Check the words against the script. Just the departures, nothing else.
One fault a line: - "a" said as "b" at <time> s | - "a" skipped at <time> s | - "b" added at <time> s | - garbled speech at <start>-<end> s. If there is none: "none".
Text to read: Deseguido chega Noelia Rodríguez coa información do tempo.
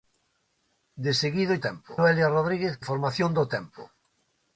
- "chega" said as "tempo" at 1.7 s
- "coa" skipped at 2.7 s